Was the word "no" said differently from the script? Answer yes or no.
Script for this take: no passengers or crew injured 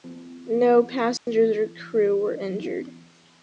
no